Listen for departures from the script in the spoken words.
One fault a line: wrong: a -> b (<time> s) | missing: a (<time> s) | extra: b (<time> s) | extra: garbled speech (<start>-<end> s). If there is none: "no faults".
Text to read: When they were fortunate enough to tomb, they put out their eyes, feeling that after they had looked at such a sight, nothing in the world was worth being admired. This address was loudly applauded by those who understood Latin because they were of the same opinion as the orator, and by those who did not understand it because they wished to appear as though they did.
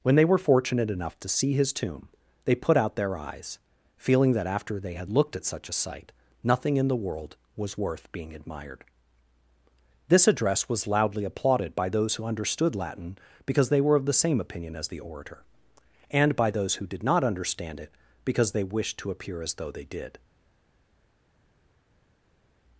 extra: see his (1.3 s)